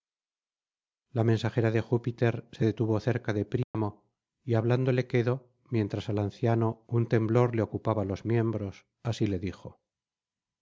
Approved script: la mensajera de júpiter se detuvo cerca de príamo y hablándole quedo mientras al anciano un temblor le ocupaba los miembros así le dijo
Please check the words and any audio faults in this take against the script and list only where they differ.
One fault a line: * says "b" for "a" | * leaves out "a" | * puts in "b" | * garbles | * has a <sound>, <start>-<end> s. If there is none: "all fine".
* has a dropout, 3.6-3.7 s